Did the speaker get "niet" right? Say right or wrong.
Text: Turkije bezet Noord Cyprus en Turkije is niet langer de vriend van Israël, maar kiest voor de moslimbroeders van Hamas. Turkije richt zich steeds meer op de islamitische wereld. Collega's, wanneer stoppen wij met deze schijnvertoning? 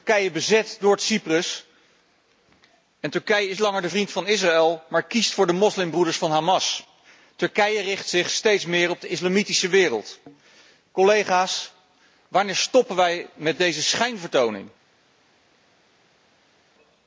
wrong